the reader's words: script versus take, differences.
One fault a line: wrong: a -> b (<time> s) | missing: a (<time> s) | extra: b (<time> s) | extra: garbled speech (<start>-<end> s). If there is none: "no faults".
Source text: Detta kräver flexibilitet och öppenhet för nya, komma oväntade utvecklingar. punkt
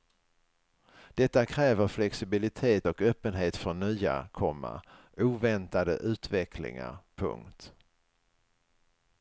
no faults